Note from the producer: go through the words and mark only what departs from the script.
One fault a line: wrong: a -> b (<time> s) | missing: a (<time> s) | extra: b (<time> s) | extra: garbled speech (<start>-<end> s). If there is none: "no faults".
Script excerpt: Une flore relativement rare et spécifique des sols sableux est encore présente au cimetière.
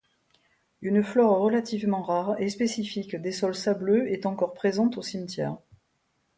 no faults